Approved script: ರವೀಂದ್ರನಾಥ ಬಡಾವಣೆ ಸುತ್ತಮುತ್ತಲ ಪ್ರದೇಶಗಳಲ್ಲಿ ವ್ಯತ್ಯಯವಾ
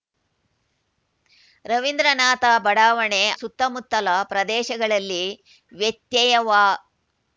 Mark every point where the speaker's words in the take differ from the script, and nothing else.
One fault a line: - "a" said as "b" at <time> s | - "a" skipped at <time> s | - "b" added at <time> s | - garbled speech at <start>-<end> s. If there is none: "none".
none